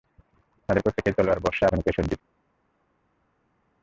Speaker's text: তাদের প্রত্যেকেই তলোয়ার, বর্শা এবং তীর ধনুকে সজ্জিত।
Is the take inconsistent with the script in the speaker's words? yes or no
yes